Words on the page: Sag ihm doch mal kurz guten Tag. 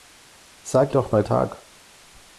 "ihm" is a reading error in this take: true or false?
true